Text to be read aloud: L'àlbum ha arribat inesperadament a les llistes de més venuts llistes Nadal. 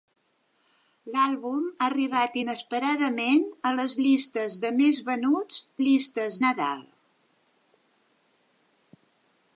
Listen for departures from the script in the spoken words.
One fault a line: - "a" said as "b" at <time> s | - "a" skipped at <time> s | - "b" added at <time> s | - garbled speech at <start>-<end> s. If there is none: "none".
none